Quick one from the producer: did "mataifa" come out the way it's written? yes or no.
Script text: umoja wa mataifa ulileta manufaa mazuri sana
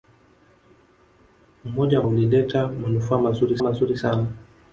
no